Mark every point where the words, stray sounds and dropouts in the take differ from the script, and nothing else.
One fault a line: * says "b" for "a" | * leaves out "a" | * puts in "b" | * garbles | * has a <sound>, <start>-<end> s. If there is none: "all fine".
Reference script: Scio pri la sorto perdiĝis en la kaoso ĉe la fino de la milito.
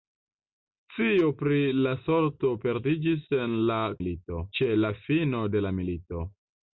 * says "milito" for "kaoso"